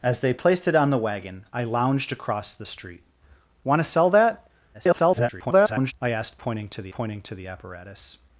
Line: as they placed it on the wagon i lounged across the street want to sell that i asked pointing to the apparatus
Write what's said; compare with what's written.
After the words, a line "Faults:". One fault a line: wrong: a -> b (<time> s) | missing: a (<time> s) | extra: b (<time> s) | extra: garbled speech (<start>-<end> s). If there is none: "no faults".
as they placed it on the wagon i lounged across the street want to sell that [garbled] i asked pointing to the pointing to the apparatus
Faults:
extra: garbled speech (4.7-5.9 s)
extra: pointing to the (6.9 s)